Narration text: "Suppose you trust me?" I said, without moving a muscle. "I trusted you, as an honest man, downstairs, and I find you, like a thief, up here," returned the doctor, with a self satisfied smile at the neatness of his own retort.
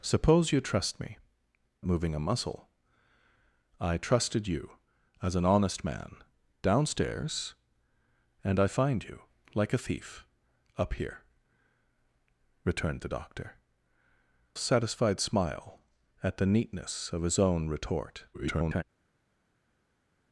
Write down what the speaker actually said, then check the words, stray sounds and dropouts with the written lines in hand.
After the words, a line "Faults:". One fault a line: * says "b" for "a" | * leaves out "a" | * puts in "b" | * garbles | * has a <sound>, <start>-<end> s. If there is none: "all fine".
"Suppose you trust me?" moving a muscle. "I trusted you, as an honest man, downstairs, and I find you, like a thief, up here," returned the doctor, satisfied smile at the neatness of his own retort. [garbled]
Faults:
* leaves out "I said without"
* leaves out "with a self"
* garbles